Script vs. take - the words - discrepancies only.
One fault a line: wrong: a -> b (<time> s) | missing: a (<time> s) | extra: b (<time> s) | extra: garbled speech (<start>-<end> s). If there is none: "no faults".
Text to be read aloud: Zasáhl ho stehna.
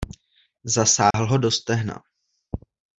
extra: do (1.4 s)